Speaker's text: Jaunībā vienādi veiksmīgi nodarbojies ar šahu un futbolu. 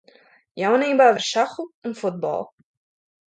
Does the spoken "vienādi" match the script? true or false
false